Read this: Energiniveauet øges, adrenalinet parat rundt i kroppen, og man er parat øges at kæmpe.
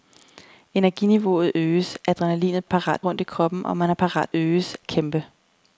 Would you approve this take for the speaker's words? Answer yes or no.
yes